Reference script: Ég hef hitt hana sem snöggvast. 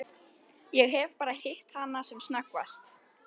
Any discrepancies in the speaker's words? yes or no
yes